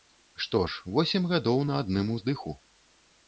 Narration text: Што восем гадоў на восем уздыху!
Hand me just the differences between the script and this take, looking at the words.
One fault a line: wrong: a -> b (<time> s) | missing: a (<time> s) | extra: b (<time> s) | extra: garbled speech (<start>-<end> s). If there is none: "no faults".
extra: ж (0.7 s)
wrong: восем -> адным (1.9 s)